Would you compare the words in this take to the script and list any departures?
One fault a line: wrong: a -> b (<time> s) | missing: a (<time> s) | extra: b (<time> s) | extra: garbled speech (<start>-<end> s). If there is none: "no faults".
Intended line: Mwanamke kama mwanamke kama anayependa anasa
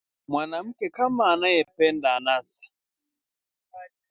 missing: mwanamke kama (1.3 s)